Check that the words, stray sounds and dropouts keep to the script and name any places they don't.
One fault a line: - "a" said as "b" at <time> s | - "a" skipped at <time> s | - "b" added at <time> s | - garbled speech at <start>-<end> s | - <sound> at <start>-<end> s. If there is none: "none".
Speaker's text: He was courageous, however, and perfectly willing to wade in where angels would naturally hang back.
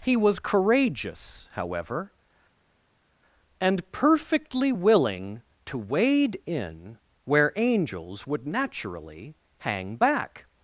none